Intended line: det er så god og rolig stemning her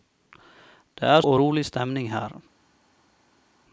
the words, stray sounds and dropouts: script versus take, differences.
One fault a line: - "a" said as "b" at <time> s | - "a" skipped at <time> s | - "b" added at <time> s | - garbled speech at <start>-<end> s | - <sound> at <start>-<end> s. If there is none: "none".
- "så god" skipped at 1.2 s